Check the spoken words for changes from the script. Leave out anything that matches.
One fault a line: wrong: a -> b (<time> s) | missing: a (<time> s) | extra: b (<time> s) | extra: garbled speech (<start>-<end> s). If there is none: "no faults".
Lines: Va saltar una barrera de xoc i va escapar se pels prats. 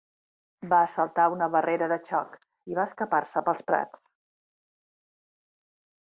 no faults